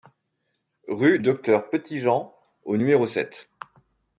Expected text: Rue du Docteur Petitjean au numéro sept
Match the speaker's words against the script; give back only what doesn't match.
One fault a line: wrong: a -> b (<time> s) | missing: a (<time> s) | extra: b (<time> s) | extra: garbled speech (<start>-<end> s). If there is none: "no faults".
missing: du (1.2 s)